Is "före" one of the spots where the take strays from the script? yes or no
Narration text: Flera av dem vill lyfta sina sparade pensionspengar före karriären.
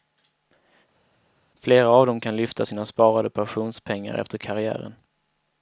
yes